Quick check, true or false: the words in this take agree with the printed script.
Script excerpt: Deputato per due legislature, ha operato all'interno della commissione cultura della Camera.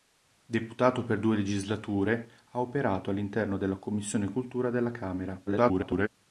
false